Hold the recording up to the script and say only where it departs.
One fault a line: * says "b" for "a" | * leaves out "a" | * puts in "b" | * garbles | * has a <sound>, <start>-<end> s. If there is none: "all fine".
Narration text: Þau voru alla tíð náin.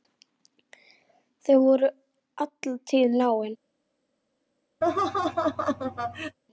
* has a laugh, 4.8-6.4 s